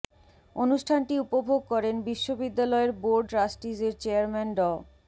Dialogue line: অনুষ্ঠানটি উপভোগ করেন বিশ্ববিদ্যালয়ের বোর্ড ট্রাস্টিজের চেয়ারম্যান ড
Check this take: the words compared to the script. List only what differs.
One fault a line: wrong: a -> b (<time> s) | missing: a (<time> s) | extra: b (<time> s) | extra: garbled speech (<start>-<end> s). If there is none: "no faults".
no faults